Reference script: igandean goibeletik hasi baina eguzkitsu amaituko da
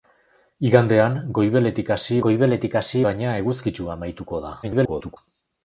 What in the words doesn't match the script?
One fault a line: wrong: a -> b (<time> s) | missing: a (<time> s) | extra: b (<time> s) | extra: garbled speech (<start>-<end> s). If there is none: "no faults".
extra: goibeletik hasi (2.3 s)
extra: garbled speech (4.6-5.2 s)